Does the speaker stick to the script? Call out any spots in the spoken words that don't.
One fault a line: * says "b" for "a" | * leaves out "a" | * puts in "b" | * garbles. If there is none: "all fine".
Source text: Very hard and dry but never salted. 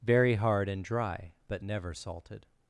all fine